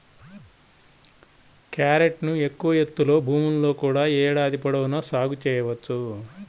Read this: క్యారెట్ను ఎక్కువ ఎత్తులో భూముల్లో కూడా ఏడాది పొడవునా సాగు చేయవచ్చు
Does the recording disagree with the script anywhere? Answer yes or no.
no